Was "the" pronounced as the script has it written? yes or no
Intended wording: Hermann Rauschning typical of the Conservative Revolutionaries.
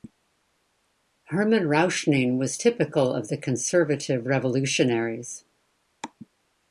yes